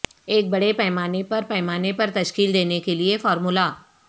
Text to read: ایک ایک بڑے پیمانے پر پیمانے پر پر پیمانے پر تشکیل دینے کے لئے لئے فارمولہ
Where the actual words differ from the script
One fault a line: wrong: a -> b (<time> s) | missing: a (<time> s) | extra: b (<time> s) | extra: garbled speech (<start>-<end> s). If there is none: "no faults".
missing: ایک (0.5 s)
missing: پر پیمانے پر (2.1 s)
missing: لئے (3.2 s)